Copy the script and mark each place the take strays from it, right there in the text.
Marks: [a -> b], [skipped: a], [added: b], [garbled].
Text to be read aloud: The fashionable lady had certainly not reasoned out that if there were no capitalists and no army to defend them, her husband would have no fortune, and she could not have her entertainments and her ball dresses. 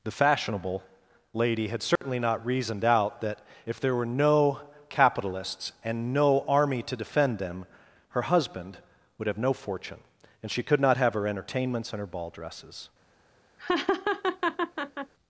The fashionable lady had certainly not reasoned out that if there were no capitalists and no army to defend them, her husband would have no fortune, and she could not have her entertainments and her ball dresses.